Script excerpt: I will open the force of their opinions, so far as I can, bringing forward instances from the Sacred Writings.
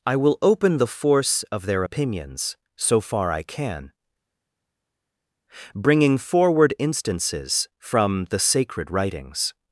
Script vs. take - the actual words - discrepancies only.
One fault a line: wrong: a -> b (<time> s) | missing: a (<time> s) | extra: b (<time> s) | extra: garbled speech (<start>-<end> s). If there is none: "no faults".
missing: as (3.3 s)